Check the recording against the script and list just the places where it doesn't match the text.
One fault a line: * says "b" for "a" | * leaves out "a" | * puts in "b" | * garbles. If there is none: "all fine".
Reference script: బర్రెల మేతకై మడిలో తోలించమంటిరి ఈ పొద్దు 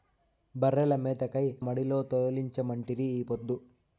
all fine